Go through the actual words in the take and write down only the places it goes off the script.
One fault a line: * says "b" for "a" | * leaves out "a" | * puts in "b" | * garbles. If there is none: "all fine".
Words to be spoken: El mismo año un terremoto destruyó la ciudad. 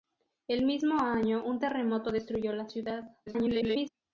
* garbles